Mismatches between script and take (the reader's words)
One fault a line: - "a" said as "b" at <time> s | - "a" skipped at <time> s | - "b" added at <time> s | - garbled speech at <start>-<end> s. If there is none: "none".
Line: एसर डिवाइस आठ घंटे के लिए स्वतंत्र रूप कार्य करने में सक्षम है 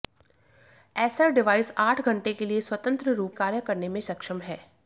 none